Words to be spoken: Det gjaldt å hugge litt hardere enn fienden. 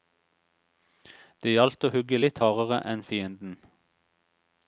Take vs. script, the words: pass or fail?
pass